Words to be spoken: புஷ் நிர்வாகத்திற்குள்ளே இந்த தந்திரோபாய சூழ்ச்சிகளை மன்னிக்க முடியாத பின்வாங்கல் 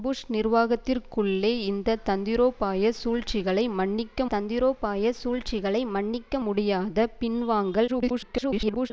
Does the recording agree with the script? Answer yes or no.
no